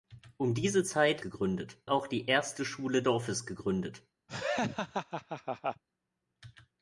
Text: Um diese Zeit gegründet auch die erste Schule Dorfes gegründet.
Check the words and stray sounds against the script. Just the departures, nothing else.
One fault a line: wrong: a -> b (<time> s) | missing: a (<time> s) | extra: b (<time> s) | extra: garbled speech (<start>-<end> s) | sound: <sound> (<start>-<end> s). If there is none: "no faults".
sound: laugh (4.3-5.8 s)